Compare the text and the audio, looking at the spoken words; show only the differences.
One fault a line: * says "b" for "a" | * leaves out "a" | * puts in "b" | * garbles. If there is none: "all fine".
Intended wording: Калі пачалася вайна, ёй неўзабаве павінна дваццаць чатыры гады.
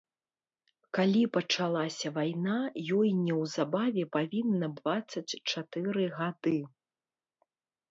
all fine